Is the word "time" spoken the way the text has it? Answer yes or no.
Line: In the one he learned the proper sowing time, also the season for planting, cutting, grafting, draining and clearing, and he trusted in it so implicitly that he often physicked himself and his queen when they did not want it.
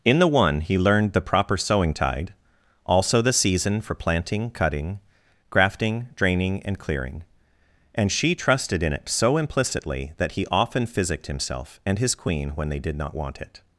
no